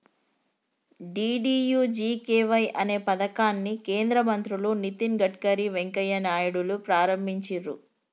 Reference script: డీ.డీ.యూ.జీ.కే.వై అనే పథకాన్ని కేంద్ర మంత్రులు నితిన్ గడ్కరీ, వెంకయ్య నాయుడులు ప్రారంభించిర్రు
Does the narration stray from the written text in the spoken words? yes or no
no